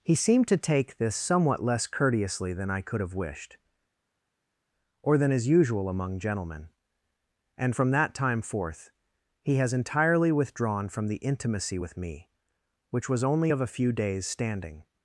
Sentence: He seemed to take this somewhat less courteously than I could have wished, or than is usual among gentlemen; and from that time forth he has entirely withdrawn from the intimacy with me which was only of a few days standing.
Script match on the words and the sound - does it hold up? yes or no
yes